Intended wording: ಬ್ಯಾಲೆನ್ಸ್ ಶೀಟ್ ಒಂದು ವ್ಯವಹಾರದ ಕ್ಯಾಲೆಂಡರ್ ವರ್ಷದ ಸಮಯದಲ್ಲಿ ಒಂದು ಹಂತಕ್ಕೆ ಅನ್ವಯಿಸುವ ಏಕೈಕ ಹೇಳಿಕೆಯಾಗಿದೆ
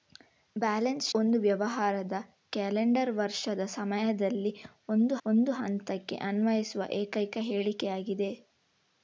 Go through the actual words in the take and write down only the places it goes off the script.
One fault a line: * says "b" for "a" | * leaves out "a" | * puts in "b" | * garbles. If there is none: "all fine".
* leaves out "ಶೀಟ್"
* puts in "ಒಂದು"